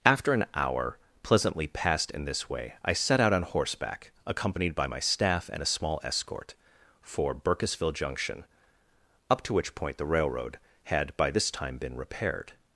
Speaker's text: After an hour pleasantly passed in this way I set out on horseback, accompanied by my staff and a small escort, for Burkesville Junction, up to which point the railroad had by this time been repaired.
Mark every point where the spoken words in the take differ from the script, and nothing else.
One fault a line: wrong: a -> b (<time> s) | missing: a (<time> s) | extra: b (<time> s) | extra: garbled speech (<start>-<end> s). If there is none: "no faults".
no faults